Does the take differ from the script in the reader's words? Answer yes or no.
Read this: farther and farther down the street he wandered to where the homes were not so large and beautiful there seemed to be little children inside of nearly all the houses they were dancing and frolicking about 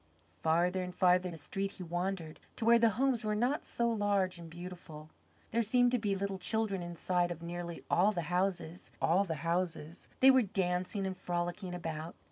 yes